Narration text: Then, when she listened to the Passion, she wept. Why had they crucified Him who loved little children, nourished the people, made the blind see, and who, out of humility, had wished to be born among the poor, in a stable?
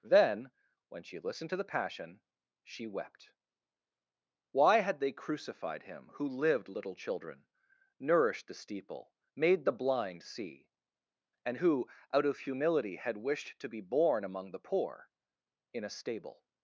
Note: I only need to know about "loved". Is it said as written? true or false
false